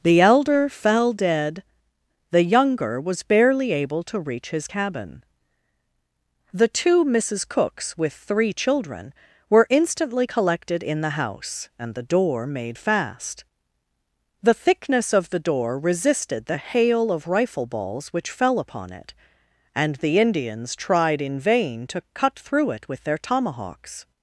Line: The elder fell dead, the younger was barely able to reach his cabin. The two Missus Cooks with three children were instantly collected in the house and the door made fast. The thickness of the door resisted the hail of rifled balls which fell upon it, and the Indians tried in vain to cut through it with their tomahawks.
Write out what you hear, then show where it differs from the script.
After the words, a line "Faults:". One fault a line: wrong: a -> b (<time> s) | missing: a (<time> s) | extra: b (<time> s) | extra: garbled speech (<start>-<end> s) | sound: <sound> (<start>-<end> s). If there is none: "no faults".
The elder fell dead, the younger was barely able to reach his cabin. The two Missus Cooks with three children were instantly collected in the house and the door made fast. The thickness of the door resisted the hail of rifle balls which fell upon it, and the Indians tried in vain to cut through it with their tomahawks.
Faults:
wrong: rifled -> rifle (17.3 s)